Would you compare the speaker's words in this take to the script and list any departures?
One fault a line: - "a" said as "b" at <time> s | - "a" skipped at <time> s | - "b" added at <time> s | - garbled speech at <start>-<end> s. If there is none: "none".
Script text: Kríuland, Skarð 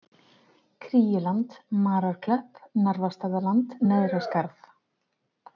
- "Mararklöpp Narfastaðaland Neðra" added at 1.8 s